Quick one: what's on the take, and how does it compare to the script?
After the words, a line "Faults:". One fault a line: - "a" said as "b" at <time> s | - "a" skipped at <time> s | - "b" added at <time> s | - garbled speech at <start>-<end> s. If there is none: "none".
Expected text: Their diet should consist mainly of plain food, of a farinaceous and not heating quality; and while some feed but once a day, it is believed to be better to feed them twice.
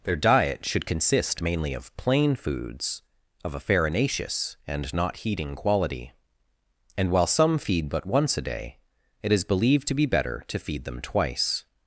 Their diet should consist mainly of plain foods, of a farinaceous and not heating quality; and while some feed but once a day, it is believed to be better to feed them twice.
Faults:
- "food" said as "foods" at 2.4 s